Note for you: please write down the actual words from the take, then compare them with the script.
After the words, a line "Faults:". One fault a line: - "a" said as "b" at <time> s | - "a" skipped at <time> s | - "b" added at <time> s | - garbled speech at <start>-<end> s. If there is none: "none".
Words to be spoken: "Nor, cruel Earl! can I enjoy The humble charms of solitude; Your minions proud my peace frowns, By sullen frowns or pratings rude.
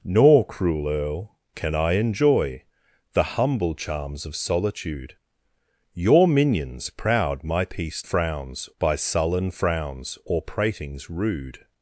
"Nor, cruel Earl! can I enjoy The humble charms of solitude; Your minions proud my peace frowns, By sullen frowns or pratings rude.
Faults:
none